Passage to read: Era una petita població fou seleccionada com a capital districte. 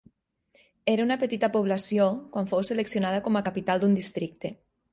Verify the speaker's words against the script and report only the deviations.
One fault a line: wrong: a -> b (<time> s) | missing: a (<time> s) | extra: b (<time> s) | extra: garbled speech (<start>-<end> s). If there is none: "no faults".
extra: quan (2.4 s)
extra: d'un (3.8 s)